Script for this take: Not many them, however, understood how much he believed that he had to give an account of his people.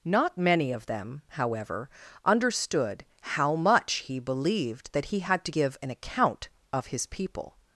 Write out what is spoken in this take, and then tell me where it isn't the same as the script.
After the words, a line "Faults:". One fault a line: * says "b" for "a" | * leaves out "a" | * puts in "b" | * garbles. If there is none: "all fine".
Not many of them, however, understood how much he believed that he had to give an account of his people.
Faults:
* puts in "of"